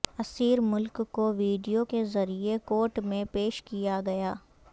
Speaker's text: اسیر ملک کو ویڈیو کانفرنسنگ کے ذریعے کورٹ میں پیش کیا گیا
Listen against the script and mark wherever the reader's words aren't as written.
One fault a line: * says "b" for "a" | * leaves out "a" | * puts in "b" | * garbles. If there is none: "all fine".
* leaves out "کانفرنسنگ"